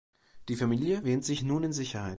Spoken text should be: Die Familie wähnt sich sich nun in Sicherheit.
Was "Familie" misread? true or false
false